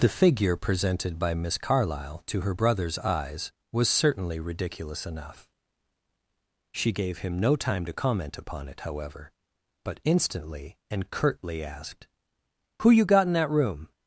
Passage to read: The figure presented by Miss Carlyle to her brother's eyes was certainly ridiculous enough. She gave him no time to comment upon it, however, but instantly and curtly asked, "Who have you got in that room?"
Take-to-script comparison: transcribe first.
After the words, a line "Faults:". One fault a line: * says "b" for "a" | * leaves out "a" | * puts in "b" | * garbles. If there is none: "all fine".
The figure presented by Miss Carlyle to her brother's eyes was certainly ridiculous enough. She gave him no time to comment upon it, however, but instantly and curtly asked, "Who you got in that room?"
Faults:
* leaves out "have"